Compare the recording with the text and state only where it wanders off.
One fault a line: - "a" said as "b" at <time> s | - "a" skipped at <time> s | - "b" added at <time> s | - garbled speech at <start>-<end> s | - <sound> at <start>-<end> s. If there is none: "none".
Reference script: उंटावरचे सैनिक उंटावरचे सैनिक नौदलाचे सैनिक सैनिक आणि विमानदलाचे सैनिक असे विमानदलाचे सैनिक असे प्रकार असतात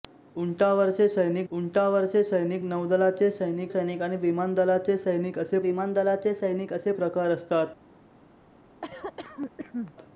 - cough at 8.8-9.9 s